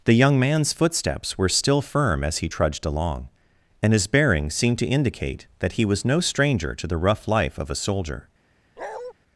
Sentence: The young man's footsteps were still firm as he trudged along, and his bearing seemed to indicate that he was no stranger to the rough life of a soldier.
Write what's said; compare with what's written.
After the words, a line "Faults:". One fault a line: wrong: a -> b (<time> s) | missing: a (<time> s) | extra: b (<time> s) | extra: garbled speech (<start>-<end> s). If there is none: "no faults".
The young man's footsteps were still firm as he trudged along, and his bearing seemed to indicate that he was no stranger to the rough life of a soldier.
Faults:
no faults